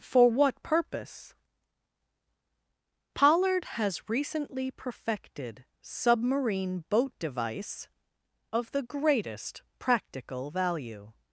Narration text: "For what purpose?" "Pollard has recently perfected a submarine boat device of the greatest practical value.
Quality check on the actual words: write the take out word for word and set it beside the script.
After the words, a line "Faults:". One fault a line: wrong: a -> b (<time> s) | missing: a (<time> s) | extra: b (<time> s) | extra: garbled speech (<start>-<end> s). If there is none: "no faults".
"For what purpose?" "Pollard has recently perfected submarine boat device of the greatest practical value.
Faults:
missing: a (5.6 s)